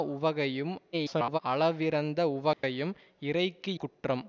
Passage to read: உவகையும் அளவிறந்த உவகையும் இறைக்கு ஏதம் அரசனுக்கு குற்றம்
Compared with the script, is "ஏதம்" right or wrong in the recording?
wrong